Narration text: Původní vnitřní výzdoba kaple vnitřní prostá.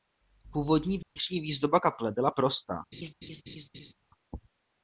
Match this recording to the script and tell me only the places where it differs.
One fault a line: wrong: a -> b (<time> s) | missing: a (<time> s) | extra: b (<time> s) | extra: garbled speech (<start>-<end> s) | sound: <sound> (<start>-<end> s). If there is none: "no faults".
sound: dropout (1.0-1.2 s)
wrong: vnitřní -> byla (2.1 s)
sound: laugh (2.9-3.9 s)